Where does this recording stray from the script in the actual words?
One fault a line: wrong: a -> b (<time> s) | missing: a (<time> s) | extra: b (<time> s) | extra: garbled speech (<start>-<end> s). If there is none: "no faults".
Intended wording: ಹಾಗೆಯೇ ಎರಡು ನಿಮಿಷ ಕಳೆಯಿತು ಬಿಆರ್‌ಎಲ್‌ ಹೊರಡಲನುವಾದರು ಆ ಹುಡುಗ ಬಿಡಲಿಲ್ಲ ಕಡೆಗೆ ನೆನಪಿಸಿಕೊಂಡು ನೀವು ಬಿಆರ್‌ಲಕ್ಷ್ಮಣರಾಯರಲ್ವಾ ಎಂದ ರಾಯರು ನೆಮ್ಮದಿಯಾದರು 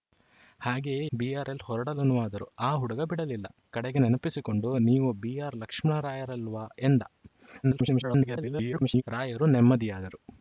missing: ಎರಡು ನಿಮಿಷ ಕಳೆಯಿತು (1.1 s)
extra: garbled speech (7.6-9.0 s)